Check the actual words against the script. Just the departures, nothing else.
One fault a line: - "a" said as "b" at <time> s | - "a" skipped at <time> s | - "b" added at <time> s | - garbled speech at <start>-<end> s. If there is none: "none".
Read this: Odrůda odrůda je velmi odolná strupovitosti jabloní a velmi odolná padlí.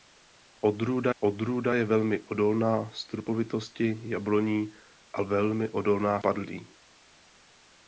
none